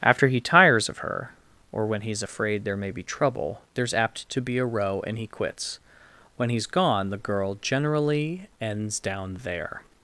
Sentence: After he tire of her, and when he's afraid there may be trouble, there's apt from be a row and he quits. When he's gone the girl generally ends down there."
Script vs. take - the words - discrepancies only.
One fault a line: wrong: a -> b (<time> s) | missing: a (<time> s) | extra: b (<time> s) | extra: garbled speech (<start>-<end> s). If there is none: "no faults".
wrong: tire -> tires (0.4 s)
wrong: and -> or (1.7 s)
wrong: from -> to (4.3 s)